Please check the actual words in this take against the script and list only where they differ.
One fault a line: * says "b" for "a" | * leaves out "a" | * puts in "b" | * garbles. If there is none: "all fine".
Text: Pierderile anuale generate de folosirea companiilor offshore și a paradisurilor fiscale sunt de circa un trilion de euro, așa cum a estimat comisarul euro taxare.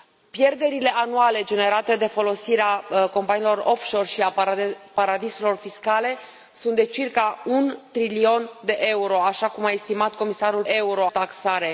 all fine